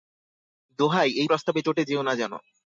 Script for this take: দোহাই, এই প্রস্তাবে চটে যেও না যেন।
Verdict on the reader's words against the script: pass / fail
pass